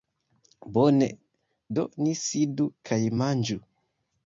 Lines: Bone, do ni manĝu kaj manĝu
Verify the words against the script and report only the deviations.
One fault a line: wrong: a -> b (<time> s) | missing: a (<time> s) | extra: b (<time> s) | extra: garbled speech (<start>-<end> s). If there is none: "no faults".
wrong: manĝu -> sidu (2.2 s)